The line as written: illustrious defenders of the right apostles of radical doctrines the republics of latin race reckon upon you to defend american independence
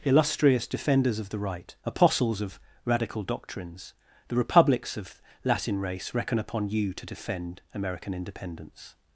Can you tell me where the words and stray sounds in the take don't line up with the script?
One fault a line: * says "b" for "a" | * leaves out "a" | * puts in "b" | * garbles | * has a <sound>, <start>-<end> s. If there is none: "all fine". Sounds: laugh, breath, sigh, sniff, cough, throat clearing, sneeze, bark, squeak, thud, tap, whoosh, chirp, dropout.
all fine